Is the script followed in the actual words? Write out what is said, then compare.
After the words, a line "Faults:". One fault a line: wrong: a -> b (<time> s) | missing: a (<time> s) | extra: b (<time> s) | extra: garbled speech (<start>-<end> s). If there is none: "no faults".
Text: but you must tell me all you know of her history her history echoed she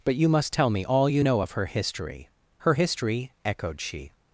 but you must tell me all you know of her history her history echoed she
Faults:
no faults